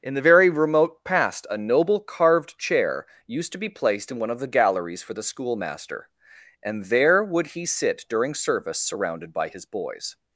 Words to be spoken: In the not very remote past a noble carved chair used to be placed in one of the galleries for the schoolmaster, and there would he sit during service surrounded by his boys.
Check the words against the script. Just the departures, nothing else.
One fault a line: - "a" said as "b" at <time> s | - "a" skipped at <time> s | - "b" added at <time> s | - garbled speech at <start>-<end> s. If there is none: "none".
- "not" skipped at 0.2 s